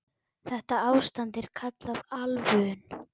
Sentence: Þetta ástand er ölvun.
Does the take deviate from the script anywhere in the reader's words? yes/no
yes